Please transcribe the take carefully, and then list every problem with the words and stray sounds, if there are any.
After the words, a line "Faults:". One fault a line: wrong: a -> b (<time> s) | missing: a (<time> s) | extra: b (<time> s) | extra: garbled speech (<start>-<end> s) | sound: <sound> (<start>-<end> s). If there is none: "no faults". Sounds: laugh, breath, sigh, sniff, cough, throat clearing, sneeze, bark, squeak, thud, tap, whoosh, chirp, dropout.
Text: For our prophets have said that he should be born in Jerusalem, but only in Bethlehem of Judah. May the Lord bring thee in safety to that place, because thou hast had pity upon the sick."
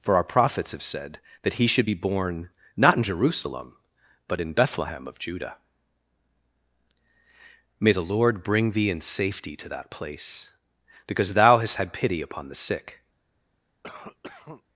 For our prophets have said that he should be born not in Jerusalem, but in Bethlehem of Judah. May the Lord bring thee in safety to that place, because thou hast had pity upon the sick."
Faults:
extra: not (2.8 s)
missing: only (4.4 s)
sound: cough (13.8-14.6 s)